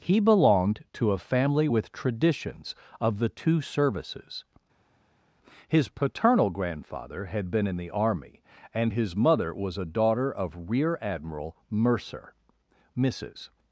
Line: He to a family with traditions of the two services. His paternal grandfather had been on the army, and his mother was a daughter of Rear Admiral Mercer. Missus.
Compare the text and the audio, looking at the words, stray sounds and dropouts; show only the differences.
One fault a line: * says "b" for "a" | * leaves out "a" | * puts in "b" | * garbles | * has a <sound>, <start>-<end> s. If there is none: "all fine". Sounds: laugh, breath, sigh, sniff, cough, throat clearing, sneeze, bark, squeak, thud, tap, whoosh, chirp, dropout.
* puts in "belonged"
* says "in" for "on"